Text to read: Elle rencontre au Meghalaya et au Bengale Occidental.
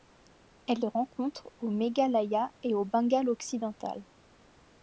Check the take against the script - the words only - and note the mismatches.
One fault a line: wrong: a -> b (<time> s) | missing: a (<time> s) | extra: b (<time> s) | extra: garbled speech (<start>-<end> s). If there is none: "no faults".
no faults